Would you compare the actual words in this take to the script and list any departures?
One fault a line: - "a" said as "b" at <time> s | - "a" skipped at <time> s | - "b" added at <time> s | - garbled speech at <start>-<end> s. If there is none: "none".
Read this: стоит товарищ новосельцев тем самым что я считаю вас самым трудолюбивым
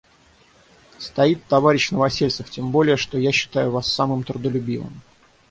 - "самым" said as "более" at 2.7 s